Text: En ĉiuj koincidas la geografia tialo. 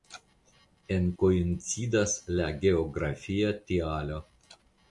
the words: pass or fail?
fail